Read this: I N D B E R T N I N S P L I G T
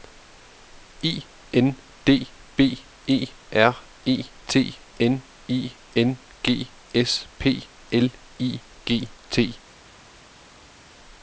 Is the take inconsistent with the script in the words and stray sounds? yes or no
yes